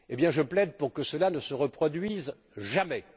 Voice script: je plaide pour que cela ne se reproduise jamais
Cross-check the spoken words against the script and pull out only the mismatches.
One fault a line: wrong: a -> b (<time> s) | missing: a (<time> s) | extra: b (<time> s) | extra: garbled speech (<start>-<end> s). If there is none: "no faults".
no faults